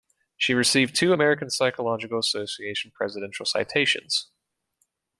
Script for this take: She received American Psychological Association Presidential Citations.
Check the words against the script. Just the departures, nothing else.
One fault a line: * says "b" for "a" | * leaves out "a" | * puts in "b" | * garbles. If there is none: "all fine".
* puts in "two"